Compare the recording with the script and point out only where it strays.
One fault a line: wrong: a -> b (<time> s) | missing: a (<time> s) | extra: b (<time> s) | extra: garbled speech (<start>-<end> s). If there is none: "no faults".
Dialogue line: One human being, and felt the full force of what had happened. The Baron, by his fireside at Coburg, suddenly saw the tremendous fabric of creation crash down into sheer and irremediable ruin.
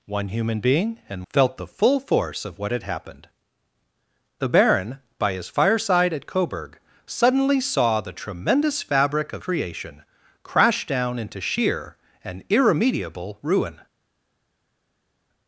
no faults